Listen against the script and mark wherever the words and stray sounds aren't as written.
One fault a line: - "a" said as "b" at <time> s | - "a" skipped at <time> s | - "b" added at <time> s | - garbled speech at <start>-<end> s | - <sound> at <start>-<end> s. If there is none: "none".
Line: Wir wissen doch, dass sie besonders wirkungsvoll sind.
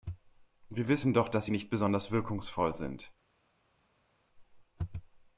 - "nicht" added at 1.5 s